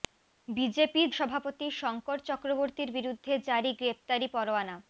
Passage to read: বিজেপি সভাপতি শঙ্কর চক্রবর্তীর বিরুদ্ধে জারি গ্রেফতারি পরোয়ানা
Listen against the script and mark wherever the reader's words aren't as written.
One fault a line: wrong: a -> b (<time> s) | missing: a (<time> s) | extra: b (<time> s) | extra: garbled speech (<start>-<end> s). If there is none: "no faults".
no faults